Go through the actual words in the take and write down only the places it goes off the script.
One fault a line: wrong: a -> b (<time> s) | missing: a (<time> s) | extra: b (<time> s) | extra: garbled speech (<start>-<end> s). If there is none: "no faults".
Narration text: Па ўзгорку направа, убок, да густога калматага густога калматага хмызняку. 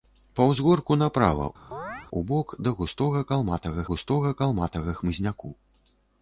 no faults